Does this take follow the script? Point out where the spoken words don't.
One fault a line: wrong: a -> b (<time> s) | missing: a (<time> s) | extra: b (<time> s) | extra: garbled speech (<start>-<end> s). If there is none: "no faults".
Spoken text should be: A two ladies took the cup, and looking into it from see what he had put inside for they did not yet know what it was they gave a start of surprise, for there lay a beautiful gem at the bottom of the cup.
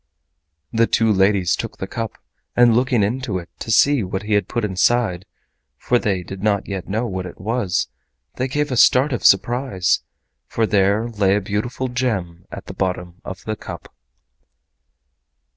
wrong: A -> The (0.7 s)
wrong: from -> to (3.6 s)